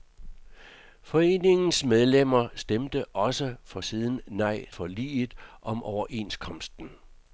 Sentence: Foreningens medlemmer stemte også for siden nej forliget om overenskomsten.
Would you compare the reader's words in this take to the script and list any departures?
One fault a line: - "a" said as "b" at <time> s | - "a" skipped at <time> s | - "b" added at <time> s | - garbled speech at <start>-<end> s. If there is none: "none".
none